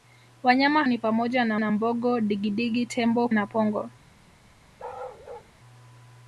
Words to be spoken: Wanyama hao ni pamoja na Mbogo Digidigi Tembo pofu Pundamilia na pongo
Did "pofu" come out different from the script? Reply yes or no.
yes